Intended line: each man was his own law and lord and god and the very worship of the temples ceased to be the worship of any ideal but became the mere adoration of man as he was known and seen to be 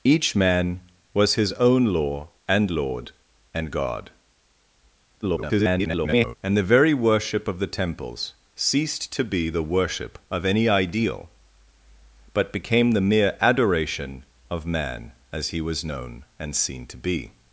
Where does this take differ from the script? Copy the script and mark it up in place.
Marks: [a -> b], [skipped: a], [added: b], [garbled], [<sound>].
each man was his own law and lord and god [garbled] and the very worship of the temples ceased to be the worship of any ideal but became the mere adoration of man as he was known and seen to be